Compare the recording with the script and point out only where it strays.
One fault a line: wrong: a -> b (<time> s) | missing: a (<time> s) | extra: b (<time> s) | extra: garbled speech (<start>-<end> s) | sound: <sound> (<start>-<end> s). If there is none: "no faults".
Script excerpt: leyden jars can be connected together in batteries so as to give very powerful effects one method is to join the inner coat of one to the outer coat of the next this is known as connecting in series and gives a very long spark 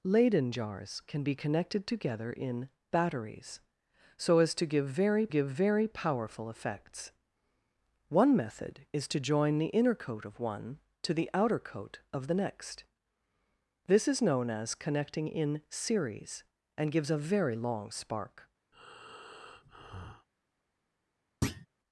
extra: give very (5.3 s)
sound: breath (18.7-20.3 s)
sound: thud (21.4-21.7 s)